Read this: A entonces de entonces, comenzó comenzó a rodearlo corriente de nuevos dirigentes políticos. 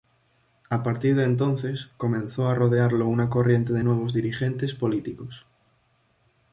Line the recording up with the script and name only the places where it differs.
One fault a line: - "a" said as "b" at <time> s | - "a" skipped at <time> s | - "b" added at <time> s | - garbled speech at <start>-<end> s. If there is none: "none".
- "entonces" said as "partir" at 0.8 s
- "comenzó" skipped at 2.5 s
- "una" added at 3.0 s